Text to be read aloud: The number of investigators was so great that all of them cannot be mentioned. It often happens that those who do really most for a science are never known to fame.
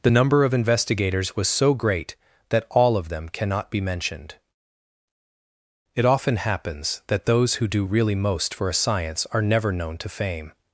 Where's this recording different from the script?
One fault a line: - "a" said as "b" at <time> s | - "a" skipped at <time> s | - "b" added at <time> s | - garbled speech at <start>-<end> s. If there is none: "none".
none